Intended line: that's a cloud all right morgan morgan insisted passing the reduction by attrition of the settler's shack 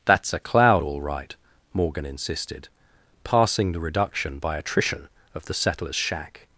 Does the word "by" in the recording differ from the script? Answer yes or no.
no